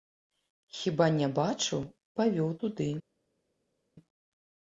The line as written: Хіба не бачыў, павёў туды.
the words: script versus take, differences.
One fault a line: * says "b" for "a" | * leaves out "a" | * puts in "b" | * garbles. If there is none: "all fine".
all fine